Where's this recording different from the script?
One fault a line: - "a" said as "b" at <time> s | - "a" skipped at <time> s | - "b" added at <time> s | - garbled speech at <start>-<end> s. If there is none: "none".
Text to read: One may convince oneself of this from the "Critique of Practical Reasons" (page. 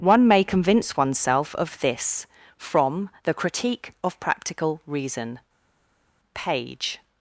- "Reasons" said as "Reason" at 4.9 s